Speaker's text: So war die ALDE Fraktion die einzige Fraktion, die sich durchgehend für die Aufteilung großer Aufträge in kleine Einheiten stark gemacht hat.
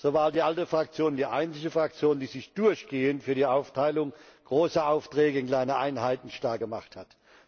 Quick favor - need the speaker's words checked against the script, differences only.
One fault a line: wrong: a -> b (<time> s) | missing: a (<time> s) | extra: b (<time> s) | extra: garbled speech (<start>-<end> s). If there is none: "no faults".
no faults